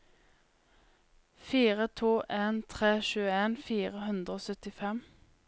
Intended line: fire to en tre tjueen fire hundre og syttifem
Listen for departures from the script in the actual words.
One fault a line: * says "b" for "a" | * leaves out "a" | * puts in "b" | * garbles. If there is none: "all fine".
all fine